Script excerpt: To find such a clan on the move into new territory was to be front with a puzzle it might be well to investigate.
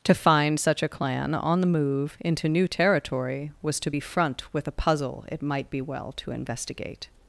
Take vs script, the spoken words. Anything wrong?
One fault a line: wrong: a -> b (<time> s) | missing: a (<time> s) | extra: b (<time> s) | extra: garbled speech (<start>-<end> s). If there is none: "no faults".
no faults